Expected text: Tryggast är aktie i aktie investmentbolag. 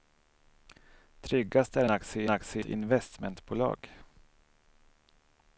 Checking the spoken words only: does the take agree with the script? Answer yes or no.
yes